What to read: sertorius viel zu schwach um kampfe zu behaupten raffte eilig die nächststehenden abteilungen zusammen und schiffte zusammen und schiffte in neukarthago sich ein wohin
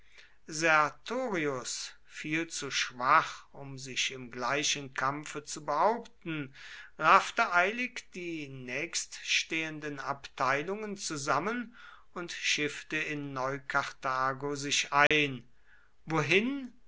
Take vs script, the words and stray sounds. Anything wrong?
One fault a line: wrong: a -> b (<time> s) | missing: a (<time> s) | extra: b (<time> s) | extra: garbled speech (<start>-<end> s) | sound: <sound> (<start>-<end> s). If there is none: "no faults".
extra: sich im gleichen (3.8 s)
missing: zusammen und schiffte (13.0 s)
sound: dropout (15.1-15.1 s)